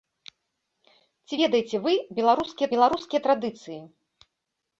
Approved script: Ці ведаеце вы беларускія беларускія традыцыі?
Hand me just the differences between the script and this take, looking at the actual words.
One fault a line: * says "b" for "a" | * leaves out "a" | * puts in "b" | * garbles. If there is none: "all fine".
all fine